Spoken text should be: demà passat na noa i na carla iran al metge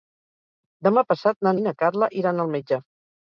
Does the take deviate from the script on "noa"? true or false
true